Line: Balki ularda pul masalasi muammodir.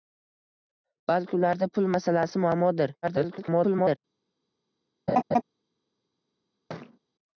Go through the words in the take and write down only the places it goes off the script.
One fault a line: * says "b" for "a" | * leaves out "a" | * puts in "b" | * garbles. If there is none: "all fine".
* garbles